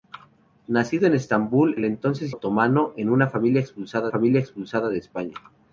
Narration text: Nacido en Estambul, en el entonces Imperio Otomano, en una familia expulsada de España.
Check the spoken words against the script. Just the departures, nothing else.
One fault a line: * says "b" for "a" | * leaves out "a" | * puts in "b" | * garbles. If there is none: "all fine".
* leaves out "en"
* leaves out "Imperio"
* puts in "familia expulsada"